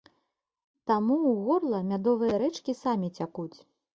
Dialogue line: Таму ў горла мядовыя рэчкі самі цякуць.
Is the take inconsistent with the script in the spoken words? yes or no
no